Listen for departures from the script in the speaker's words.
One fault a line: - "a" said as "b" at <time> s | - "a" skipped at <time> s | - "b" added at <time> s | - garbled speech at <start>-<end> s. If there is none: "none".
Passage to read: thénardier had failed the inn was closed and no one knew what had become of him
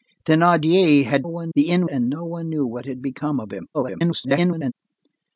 - "failed" said as "one" at 1.3 s
- "was closed" skipped at 1.9 s
- garbled speech at 3.7-4.7 s